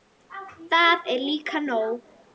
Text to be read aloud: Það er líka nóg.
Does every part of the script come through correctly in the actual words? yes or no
yes